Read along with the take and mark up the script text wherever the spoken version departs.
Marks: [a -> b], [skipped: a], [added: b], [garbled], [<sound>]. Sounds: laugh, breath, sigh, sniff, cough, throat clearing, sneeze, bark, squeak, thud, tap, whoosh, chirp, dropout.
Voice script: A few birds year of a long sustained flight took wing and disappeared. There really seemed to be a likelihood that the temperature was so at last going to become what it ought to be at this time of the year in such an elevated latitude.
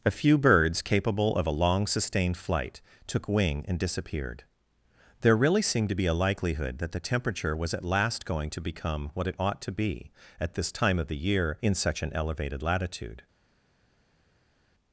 A few birds [year -> capable] of a long sustained flight took wing and disappeared. There really seemed to be a likelihood that the temperature was [skipped: so] at last going to become what it ought to be at this time of the year in such an elevated latitude.